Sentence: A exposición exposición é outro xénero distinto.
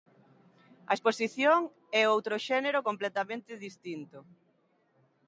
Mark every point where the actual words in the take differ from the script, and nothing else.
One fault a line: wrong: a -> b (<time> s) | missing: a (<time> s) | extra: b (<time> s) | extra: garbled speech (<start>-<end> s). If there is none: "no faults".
missing: exposición (1.6 s)
extra: completamente (2.9 s)